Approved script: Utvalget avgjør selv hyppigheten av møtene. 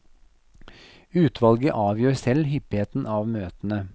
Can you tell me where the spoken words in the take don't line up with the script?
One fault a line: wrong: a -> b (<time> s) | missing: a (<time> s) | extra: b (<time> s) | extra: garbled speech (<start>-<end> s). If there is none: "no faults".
no faults